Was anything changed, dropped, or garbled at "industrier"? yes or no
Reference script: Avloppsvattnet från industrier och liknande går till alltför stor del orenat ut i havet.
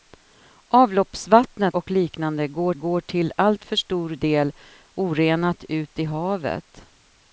yes